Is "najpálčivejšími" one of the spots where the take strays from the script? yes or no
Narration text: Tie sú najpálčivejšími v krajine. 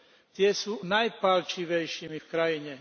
no